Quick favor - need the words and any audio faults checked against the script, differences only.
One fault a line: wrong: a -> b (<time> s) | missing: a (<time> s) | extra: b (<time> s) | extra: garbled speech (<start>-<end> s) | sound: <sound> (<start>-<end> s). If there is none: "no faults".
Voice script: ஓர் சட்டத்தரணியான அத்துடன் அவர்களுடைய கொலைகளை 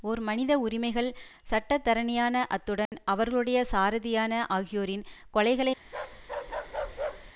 extra: மனித உரிமைகள் (0.2 s)
sound: dropout (2.9-2.9 s)
extra: சாரதியான ஆகியோரின் (3.7 s)
sound: bark (5.8-7.3 s)